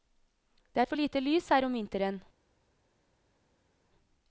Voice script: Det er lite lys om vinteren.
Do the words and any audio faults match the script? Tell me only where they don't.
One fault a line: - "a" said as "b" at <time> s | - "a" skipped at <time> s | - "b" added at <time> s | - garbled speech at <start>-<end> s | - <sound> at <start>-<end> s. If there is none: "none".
- "for" added at 0.8 s
- "her" added at 1.5 s